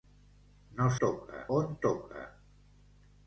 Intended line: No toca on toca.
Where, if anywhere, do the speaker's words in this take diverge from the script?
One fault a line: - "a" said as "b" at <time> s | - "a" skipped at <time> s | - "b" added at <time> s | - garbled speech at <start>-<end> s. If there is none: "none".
none